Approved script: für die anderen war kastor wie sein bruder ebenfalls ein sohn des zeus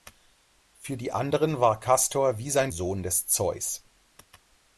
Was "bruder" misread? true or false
true